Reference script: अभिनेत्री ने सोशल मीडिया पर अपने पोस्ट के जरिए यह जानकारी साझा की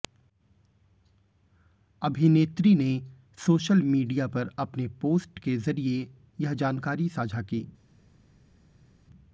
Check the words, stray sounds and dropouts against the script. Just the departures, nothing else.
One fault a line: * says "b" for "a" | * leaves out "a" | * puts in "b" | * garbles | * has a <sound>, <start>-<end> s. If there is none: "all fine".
all fine